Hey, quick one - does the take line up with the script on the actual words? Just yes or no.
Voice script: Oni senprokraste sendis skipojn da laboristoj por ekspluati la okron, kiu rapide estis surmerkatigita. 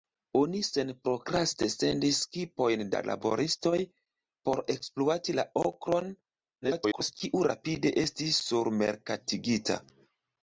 no